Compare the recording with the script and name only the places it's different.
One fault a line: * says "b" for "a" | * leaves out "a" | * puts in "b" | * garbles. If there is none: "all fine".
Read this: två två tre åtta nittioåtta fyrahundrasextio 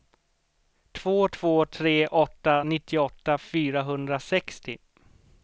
all fine